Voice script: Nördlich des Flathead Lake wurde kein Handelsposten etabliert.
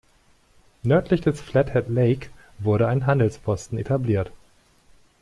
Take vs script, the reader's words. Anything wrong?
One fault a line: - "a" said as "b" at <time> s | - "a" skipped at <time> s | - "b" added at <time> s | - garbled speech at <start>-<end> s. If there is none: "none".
- "kein" said as "ein" at 2.9 s